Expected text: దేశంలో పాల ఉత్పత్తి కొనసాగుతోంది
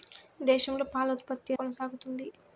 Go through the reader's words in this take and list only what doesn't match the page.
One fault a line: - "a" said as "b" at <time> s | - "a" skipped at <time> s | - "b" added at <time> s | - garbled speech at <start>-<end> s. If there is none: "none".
none